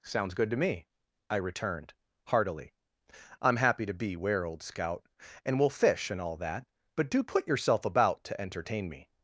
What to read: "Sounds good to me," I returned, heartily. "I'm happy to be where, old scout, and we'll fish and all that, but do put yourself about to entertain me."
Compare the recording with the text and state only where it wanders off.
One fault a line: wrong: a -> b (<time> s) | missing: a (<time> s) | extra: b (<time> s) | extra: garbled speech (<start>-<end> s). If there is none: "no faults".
no faults